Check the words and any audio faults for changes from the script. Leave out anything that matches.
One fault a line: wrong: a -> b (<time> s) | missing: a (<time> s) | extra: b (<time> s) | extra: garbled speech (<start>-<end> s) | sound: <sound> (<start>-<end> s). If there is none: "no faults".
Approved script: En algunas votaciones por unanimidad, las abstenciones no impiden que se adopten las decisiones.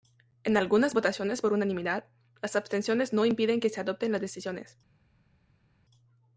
no faults